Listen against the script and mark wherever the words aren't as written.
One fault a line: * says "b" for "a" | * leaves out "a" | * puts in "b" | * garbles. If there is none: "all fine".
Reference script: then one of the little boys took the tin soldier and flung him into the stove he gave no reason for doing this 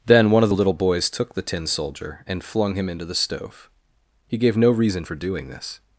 all fine